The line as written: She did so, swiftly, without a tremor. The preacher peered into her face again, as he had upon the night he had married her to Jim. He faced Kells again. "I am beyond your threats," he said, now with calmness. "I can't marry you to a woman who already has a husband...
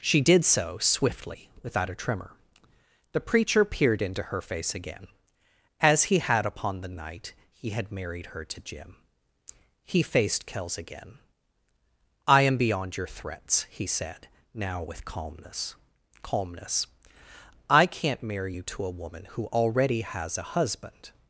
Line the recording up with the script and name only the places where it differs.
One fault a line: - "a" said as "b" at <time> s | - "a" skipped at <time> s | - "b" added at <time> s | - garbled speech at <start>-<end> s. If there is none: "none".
- "calmness" added at 16.2 s